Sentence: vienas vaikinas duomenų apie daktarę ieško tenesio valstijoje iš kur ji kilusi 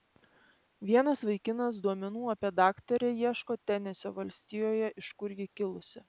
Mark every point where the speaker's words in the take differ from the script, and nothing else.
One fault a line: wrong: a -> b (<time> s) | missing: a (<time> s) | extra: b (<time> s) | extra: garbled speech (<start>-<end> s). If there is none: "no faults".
no faults